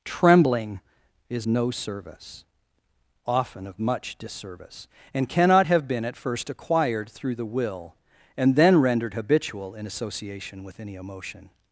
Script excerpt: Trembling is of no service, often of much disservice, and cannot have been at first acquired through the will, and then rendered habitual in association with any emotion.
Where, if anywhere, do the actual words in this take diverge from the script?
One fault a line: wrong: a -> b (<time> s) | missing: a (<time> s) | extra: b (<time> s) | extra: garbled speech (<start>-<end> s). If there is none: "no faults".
missing: of (1.5 s)